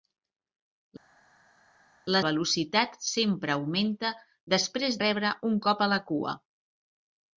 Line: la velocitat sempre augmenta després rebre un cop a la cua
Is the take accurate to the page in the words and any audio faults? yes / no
yes